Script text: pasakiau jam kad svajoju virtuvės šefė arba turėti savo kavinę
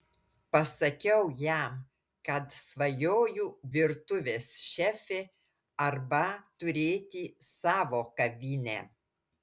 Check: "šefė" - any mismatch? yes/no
no